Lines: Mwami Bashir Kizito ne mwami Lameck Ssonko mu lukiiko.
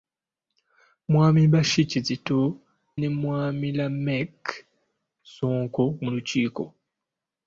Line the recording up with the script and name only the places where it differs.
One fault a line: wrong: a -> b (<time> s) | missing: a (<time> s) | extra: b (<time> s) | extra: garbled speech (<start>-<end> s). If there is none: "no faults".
no faults